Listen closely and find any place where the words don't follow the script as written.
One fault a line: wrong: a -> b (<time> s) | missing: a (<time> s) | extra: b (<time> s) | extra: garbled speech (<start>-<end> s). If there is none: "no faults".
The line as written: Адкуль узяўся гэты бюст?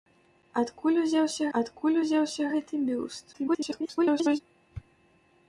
extra: адкуль узяўся (1.6 s)
extra: garbled speech (3.3-4.4 s)